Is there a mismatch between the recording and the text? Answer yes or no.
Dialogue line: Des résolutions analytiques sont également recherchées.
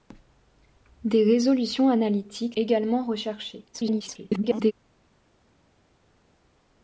yes